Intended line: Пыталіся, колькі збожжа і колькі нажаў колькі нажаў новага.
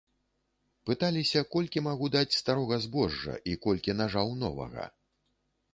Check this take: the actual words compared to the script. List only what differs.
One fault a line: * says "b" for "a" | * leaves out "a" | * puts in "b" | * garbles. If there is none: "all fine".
* puts in "магу даць старога"
* leaves out "колькі нажаў"